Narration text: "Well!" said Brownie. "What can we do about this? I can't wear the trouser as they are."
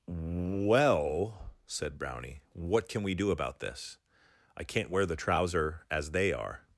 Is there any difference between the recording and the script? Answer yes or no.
no